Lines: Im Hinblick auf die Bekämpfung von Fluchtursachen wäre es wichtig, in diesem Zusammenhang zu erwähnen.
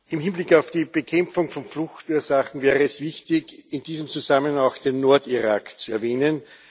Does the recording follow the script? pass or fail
fail